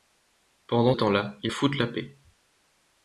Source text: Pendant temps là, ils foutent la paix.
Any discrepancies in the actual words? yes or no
no